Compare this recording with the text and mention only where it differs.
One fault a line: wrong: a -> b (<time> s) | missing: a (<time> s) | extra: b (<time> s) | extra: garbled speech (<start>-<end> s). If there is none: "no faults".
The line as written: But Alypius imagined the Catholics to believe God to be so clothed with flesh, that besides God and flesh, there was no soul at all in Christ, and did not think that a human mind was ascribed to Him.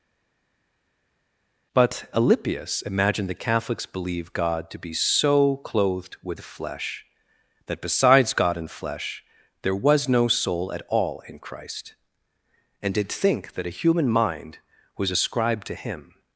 missing: to (3.9 s)
missing: not (13.1 s)